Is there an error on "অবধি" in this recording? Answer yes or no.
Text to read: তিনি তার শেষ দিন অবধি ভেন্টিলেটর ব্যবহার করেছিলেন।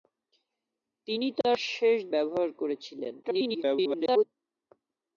yes